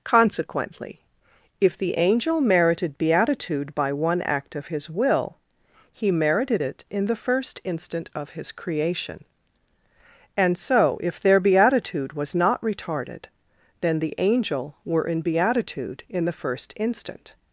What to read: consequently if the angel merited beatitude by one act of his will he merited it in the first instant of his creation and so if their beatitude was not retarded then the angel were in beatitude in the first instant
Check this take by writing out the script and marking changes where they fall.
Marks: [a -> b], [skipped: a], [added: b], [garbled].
consequently if the angel merited beatitude by one act of his will he merited it in the first instant of his creation and so if their beatitude was not retarded then the angel were in beatitude in the first instant